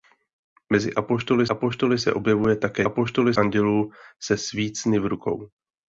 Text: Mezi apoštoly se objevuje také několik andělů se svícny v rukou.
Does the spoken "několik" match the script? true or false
false